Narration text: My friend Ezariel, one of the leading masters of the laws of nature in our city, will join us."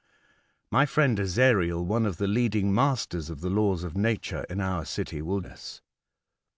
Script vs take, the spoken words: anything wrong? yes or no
yes